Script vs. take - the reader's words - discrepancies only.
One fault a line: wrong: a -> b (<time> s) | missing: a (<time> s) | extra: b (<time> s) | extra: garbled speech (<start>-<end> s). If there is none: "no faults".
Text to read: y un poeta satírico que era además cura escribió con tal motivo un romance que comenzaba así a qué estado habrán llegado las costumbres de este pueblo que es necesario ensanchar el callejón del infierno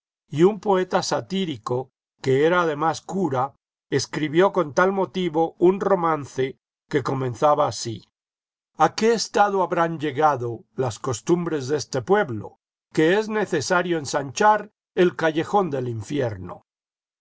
no faults